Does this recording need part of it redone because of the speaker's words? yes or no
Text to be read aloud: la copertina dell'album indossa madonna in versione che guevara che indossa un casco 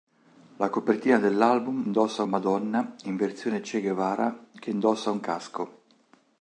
no